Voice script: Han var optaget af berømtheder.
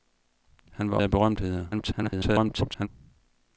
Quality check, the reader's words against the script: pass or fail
fail